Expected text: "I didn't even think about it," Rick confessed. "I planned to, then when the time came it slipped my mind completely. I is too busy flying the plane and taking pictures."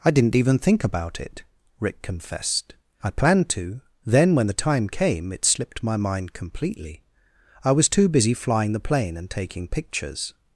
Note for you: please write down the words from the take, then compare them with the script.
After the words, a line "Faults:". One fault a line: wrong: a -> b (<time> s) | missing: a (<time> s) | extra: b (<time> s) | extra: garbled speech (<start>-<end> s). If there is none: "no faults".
"I didn't even think about it," Rick confessed. "I planned to, then when the time came it slipped my mind completely. I was too busy flying the plane and taking pictures."
Faults:
wrong: is -> was (7.7 s)